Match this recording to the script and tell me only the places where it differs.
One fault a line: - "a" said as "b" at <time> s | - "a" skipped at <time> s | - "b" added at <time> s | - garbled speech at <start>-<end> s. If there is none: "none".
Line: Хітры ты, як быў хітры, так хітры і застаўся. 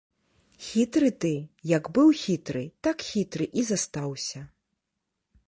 none